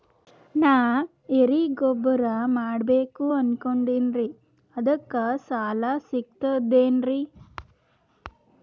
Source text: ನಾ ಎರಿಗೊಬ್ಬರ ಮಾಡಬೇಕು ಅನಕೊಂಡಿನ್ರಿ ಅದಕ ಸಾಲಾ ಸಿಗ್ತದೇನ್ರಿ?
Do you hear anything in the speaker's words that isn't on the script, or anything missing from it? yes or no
no